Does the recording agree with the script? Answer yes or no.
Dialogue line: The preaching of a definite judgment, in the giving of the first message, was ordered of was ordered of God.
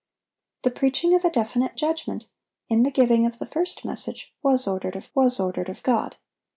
yes